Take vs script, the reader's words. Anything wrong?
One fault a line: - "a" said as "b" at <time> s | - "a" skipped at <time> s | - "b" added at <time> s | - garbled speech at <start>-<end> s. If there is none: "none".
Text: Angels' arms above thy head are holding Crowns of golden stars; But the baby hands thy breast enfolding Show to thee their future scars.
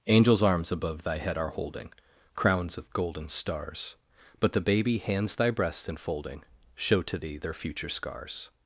none